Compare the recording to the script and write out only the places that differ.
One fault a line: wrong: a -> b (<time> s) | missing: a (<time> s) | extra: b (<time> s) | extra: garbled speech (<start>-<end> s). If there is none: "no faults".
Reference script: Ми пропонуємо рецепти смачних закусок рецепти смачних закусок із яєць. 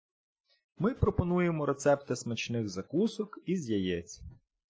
missing: рецепти смачних закусок (3.4 s)